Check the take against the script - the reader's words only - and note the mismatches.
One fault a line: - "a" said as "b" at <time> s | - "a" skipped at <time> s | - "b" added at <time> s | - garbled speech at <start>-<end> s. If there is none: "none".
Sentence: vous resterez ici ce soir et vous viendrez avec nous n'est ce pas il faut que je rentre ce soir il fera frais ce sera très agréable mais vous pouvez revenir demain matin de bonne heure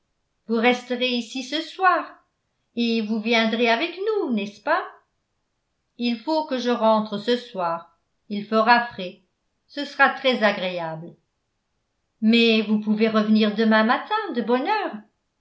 none